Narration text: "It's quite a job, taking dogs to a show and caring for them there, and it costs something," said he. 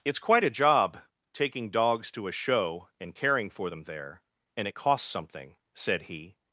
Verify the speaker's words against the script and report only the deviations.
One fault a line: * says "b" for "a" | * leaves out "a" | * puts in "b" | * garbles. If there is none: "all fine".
all fine